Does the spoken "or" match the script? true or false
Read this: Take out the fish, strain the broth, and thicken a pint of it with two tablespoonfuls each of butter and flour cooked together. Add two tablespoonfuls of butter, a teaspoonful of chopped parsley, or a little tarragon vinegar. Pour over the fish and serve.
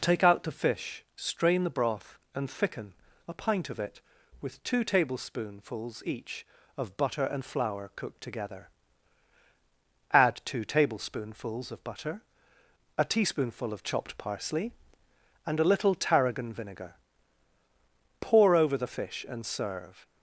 false